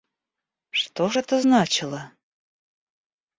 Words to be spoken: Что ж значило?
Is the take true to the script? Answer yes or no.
no